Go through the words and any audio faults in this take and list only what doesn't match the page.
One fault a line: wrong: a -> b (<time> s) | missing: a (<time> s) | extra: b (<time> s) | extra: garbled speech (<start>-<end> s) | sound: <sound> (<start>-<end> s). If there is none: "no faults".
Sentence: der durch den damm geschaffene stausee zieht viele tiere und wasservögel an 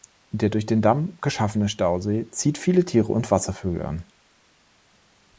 no faults